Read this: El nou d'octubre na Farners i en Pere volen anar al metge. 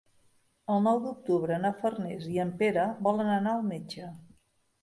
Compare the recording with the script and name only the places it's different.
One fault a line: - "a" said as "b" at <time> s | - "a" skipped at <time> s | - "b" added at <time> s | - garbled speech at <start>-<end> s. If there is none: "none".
none